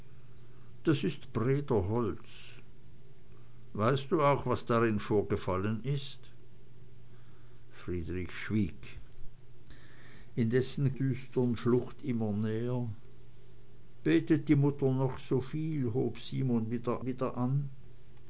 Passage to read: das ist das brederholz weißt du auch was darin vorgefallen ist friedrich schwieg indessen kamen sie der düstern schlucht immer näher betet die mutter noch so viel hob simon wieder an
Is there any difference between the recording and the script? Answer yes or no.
yes